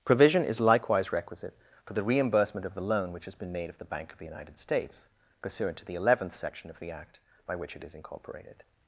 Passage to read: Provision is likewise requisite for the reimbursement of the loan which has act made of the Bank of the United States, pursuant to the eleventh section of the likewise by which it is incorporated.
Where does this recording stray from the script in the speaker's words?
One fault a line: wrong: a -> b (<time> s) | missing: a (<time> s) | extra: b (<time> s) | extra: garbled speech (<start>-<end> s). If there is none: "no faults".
wrong: act -> been (3.4 s)
wrong: likewise -> act (6.9 s)